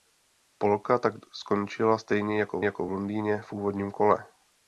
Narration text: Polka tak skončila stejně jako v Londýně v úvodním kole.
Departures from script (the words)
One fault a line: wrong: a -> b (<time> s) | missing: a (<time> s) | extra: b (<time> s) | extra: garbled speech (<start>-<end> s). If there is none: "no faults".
extra: jako (2.6 s)